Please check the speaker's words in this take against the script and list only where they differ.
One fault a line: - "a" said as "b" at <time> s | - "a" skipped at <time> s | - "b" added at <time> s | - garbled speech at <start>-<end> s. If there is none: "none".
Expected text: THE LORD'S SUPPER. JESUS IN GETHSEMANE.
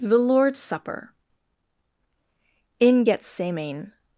- "JESUS" skipped at 1.1 s